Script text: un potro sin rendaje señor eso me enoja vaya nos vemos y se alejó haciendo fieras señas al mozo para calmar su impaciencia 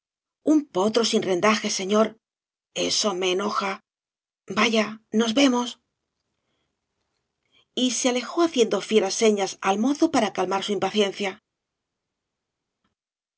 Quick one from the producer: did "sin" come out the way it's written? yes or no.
yes